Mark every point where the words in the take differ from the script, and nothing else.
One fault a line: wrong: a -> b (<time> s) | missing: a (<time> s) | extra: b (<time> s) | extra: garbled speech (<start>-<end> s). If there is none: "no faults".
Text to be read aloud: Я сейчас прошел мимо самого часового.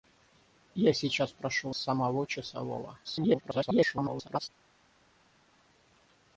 missing: мимо (1.8 s)
extra: garbled speech (3.0-4.5 s)